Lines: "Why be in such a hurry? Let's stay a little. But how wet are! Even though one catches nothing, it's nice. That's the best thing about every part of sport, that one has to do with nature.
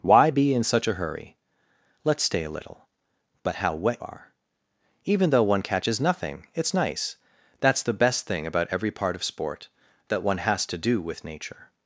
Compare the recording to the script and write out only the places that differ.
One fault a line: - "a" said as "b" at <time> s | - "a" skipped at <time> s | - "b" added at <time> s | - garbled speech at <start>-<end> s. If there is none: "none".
none